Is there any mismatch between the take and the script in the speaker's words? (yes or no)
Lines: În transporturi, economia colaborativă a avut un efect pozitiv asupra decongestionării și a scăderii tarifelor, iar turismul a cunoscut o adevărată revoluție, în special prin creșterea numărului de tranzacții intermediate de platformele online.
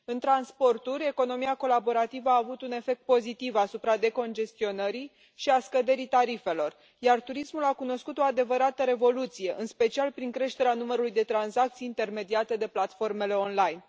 no